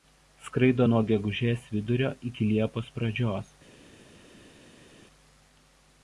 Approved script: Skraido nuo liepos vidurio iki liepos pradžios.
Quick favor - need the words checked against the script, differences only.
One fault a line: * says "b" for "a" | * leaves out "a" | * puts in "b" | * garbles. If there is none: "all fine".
* says "gegužės" for "liepos"